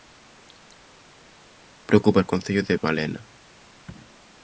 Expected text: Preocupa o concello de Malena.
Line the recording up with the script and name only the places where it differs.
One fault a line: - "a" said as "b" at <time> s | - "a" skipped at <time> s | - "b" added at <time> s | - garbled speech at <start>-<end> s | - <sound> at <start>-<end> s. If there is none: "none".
none